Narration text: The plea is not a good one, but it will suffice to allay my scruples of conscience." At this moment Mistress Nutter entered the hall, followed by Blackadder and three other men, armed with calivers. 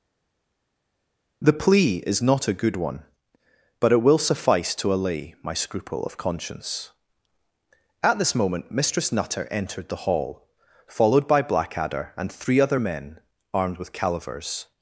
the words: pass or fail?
fail